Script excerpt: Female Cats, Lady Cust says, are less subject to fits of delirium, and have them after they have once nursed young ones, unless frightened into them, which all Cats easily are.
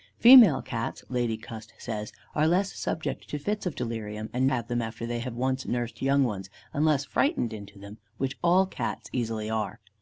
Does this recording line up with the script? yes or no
yes